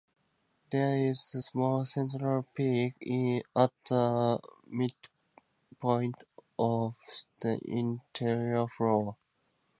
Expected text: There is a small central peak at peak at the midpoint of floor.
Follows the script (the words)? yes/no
no